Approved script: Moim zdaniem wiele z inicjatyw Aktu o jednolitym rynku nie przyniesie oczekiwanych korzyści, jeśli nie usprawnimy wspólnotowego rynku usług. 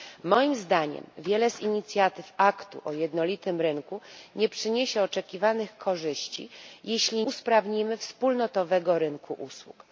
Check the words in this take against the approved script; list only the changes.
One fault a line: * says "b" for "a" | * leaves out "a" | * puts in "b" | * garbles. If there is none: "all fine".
* leaves out "nie"